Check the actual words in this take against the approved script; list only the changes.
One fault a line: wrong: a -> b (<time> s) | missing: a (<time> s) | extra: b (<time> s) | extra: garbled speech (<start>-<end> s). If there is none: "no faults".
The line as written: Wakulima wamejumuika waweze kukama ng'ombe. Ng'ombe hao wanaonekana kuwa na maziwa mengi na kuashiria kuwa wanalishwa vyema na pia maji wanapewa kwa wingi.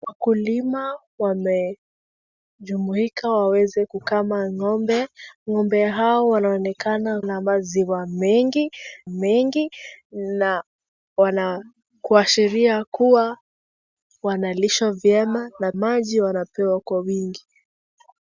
missing: kuwa (7.2 s)
extra: mengi (9.1 s)
missing: pia (15.7 s)